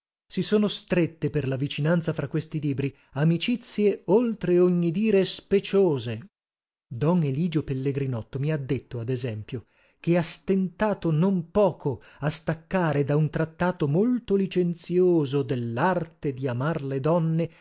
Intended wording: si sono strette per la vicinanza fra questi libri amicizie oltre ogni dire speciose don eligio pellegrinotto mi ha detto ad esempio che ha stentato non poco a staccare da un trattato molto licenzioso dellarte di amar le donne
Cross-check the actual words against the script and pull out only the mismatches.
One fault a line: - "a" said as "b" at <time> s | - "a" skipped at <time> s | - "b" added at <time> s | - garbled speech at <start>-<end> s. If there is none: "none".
none